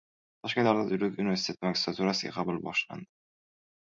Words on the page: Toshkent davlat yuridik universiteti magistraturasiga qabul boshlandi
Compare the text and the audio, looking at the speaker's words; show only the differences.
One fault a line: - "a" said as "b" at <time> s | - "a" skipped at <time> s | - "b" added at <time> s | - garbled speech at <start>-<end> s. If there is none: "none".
none